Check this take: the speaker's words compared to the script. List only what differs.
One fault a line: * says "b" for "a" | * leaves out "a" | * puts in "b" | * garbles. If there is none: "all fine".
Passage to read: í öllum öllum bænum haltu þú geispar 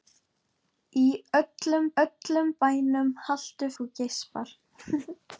all fine